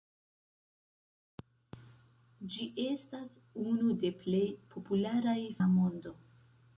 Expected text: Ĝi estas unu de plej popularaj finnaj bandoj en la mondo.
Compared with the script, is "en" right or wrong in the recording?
wrong